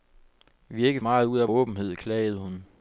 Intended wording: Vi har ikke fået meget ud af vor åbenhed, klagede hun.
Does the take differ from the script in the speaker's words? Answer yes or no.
yes